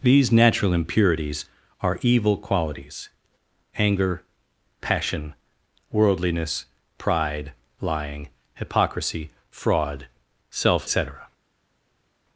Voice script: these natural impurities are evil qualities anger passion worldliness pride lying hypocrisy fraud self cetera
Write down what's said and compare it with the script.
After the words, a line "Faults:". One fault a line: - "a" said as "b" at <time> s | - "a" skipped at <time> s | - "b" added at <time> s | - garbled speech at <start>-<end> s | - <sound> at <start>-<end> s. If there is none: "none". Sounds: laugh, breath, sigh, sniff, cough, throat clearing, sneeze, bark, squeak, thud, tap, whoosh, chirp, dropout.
these natural impurities are evil qualities anger passion worldliness pride lying hypocrisy fraud self cetera
Faults:
none